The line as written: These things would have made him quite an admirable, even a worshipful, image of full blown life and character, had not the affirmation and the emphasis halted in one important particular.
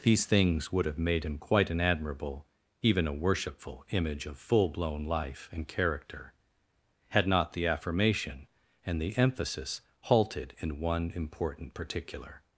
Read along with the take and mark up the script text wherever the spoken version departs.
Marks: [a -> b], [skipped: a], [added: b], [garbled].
These things would have made him quite an admirable, even a worshipful, image of full blown life and character, had not the affirmation and the emphasis halted in one important particular.